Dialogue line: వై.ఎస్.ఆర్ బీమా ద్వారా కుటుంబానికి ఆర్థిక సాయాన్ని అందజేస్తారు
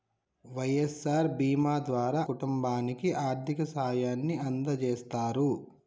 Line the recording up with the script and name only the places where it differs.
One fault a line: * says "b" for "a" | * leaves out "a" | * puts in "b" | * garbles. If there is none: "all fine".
all fine